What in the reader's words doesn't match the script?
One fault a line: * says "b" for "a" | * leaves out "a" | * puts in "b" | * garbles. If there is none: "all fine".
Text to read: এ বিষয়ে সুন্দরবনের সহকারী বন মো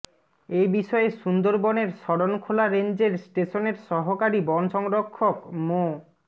* puts in "শরণখোলা রেঞ্জের স্টেশনের"
* puts in "সংরক্ষক"